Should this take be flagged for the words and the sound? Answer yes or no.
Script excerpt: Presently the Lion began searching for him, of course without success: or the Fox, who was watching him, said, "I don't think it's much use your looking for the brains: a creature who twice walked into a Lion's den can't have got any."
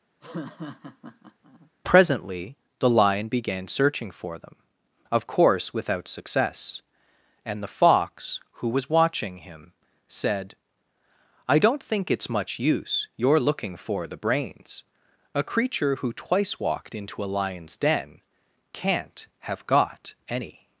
yes